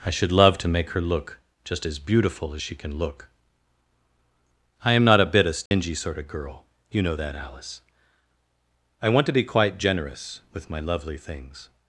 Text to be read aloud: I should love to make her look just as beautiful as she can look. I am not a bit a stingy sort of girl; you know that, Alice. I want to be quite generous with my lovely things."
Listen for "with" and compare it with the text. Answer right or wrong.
right